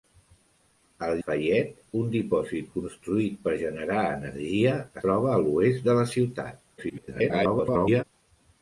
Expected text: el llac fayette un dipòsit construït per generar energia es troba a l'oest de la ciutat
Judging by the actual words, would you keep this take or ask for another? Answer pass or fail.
fail